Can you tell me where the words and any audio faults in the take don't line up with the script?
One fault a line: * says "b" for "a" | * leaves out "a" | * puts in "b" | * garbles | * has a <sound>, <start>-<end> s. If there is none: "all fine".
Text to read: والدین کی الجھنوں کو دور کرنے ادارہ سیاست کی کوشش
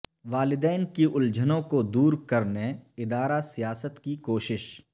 all fine